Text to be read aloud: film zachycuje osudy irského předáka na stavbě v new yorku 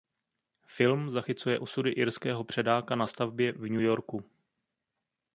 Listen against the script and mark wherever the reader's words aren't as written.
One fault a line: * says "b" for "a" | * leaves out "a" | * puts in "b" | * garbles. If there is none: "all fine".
all fine